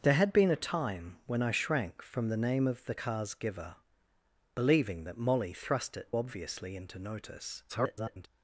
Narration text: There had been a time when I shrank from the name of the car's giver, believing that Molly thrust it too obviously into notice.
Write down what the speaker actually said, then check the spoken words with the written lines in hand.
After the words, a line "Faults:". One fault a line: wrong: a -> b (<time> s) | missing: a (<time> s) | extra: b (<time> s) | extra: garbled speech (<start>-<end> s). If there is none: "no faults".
There had been a time when I shrank from the name of the car's giver, believing that Molly thrust it obviously into notice. [garbled]
Faults:
missing: too (6.1 s)
extra: garbled speech (7.7-8.3 s)